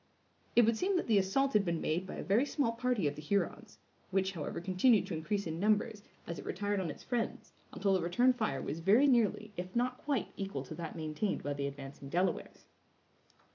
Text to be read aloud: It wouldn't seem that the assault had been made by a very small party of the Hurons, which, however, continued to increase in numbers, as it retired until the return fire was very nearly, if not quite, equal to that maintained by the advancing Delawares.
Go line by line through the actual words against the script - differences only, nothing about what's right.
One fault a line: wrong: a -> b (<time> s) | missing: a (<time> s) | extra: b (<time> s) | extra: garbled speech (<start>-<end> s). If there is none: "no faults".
wrong: wouldn't -> would (0.6 s)
extra: on its friends (6.8 s)